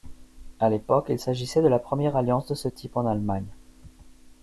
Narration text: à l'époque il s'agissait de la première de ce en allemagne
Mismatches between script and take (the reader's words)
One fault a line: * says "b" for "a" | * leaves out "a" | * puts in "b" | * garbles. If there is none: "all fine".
* puts in "alliance"
* puts in "type"